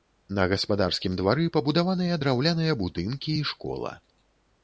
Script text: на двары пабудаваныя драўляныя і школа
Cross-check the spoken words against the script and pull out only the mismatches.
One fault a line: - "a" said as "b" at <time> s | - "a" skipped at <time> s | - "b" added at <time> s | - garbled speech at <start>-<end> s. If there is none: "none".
- "гаспадарскім" added at 0.5 s
- "будынкі" added at 2.9 s